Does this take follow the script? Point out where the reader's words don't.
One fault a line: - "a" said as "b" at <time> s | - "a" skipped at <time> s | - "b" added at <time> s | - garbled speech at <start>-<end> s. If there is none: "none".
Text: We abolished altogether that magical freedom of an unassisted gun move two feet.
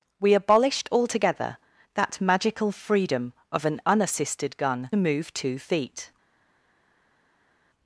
none